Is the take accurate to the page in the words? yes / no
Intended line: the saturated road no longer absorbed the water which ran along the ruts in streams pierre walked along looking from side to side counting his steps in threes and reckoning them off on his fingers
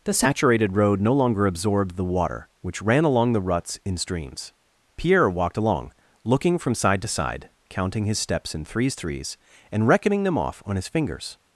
no